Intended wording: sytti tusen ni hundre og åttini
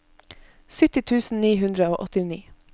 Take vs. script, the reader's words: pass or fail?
pass